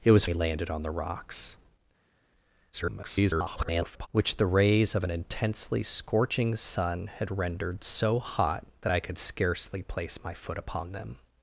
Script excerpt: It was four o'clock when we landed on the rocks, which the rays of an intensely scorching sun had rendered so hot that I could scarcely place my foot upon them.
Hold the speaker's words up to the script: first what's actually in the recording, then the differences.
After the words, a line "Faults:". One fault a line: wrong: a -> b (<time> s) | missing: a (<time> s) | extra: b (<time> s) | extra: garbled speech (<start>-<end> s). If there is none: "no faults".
It was we landed on the rocks, [garbled] which the rays of an intensely scorching sun had rendered so hot that I could scarcely place my foot upon them.
Faults:
missing: four o'clock when (0.2 s)
extra: garbled speech (2.7-4.1 s)